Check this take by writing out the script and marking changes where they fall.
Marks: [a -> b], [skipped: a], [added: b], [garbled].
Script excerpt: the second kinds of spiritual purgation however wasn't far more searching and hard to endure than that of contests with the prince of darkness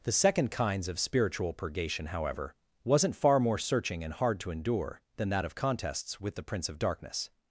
the second kinds of spiritual purgation however wasn't far more searching and hard to endure than that of contests with the prince of darkness